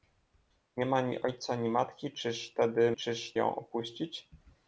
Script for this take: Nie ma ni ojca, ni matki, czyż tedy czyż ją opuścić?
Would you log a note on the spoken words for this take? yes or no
no